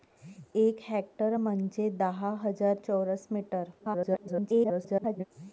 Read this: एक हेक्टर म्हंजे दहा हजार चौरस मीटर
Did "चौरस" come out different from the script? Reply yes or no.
no